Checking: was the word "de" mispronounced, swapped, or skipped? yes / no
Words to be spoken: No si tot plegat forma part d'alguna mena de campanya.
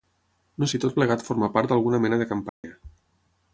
no